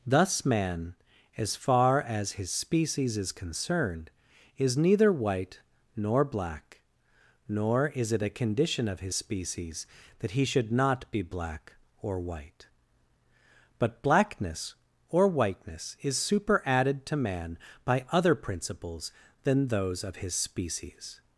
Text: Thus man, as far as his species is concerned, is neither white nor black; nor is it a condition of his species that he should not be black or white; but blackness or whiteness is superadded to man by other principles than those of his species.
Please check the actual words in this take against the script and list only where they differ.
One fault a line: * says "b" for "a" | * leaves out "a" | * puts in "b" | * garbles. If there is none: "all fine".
all fine